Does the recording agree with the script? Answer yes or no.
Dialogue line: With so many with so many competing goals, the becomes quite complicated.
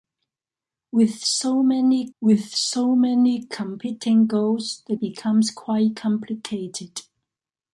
yes